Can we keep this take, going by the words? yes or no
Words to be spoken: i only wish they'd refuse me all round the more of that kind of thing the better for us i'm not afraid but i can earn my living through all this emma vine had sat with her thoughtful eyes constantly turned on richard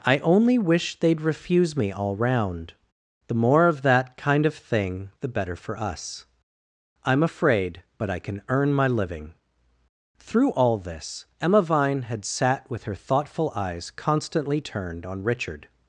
no